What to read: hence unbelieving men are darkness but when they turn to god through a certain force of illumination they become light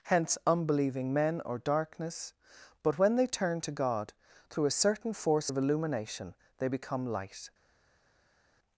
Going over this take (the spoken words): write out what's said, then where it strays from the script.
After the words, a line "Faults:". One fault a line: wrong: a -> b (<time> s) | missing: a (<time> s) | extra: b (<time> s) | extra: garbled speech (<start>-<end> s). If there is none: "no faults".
hence unbelieving men or darkness but when they turn to god through a certain force of illumination they become light
Faults:
wrong: are -> or (1.4 s)